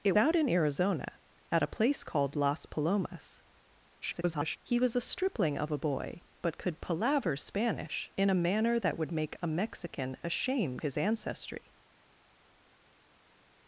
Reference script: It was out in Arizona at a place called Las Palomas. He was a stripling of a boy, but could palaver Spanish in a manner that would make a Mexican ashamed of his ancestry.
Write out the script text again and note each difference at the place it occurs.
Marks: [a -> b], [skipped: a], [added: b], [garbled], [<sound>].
It [skipped: was] out in Arizona at a place called Las Palomas. [garbled] He was a stripling of a boy, but could palaver Spanish in a manner that would make a Mexican ashamed [skipped: of] his ancestry.